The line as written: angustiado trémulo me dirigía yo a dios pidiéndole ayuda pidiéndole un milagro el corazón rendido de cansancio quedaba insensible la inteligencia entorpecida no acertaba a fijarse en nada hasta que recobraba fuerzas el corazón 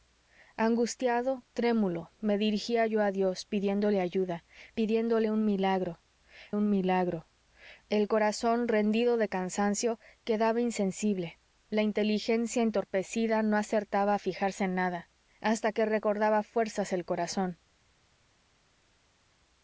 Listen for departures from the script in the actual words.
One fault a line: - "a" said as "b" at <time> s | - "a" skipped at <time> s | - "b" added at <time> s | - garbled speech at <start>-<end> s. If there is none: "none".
- "un milagro" added at 6.5 s